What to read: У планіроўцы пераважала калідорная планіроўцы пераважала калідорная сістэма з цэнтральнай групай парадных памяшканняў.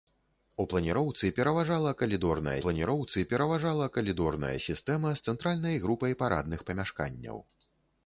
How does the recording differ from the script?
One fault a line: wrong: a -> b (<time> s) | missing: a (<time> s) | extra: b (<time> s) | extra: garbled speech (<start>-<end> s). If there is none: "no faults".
no faults